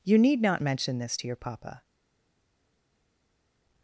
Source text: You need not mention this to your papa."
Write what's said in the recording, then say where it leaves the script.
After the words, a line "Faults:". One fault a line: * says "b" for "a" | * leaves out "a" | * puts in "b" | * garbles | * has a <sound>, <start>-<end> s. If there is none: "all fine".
You need not mention this to your papa."
Faults:
all fine